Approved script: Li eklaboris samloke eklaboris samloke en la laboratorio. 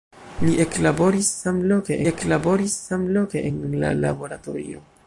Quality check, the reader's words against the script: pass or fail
pass